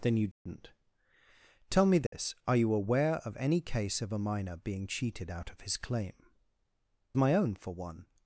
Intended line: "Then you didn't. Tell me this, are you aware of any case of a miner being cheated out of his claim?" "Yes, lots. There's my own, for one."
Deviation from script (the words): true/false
true